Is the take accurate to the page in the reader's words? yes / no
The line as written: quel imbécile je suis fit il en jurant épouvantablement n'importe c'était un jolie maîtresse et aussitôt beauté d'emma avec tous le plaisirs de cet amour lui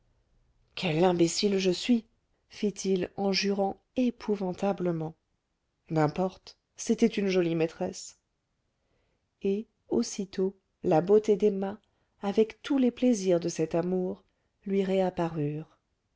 no